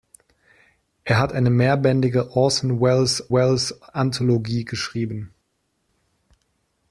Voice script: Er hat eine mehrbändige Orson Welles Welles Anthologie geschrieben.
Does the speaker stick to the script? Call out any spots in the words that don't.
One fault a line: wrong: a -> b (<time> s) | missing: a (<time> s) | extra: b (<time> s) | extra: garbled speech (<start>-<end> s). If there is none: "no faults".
no faults